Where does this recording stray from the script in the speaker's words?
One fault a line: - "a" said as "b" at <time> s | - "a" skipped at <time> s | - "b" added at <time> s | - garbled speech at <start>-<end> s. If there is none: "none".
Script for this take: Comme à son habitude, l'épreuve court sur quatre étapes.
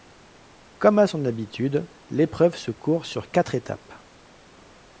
- "se" added at 2.5 s